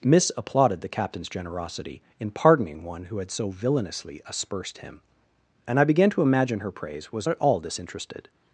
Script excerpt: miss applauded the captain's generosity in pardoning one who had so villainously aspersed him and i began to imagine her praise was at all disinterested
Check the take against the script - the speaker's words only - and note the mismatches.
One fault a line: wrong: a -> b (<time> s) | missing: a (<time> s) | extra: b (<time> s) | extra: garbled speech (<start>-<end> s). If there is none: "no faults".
no faults